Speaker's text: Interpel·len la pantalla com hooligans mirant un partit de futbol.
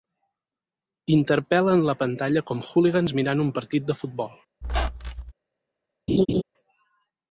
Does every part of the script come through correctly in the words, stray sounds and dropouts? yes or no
no